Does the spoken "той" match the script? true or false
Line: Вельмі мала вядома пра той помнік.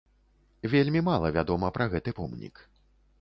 false